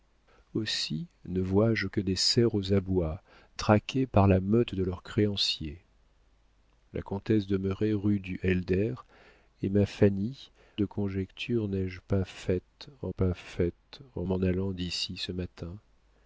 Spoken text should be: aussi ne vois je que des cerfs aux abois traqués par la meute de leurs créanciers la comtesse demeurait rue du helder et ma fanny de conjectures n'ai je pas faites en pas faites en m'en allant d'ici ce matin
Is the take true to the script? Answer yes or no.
yes